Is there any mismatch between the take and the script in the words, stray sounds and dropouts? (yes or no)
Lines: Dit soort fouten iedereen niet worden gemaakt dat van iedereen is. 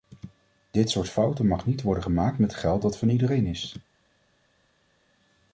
yes